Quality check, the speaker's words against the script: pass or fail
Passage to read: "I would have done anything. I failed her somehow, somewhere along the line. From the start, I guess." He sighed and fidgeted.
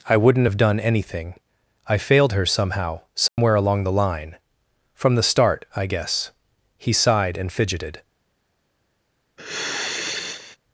fail